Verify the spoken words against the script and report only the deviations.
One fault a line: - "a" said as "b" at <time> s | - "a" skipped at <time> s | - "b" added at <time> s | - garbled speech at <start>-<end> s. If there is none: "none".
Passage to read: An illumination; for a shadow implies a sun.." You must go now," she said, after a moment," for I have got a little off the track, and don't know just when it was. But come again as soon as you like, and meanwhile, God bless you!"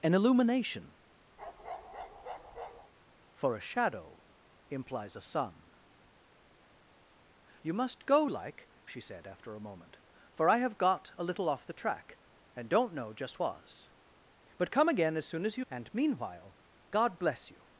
- "now" said as "like" at 8.3 s
- "when it" skipped at 13.4 s
- "like" skipped at 15.6 s